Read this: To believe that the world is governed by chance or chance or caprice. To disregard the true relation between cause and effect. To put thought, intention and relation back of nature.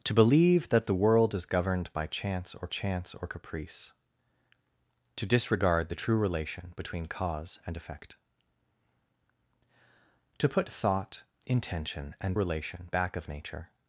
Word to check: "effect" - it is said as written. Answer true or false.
true